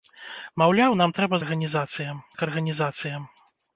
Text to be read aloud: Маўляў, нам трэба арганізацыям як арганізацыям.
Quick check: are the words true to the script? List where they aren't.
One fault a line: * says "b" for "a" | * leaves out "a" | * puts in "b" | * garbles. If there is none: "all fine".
all fine